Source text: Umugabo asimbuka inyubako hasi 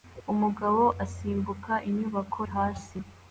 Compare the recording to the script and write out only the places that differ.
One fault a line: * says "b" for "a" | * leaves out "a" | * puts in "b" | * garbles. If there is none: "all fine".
all fine